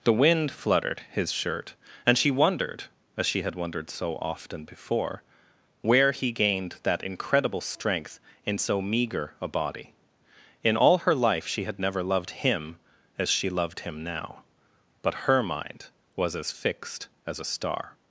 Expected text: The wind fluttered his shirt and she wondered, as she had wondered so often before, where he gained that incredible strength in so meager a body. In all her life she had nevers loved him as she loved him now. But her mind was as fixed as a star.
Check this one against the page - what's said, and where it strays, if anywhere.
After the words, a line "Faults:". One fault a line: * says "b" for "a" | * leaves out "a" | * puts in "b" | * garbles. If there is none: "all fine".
The wind fluttered his shirt and she wondered, as she had wondered so often before, where he gained that incredible strength in so meager a body. In all her life she had never loved him as she loved him now. But her mind was as fixed as a star.
Faults:
* says "never" for "nevers"